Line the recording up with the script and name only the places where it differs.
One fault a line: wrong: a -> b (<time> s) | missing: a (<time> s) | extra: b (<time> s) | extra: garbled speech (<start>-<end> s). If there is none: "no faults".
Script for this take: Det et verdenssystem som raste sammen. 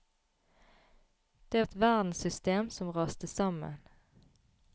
no faults